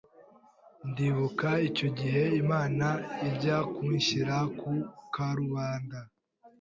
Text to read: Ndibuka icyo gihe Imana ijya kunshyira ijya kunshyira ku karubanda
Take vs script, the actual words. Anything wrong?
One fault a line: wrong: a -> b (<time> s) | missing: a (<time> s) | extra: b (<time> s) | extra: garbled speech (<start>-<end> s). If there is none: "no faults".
missing: ijya kunshyira (4.4 s)